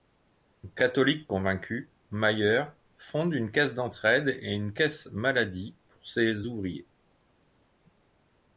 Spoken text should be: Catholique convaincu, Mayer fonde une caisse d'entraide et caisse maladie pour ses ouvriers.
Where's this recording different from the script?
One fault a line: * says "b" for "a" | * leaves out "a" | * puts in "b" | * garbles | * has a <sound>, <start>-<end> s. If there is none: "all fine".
* puts in "une"